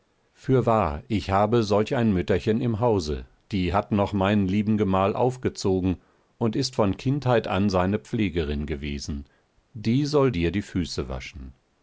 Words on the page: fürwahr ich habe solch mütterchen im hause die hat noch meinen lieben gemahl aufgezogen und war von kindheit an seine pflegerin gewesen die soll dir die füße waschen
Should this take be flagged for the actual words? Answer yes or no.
yes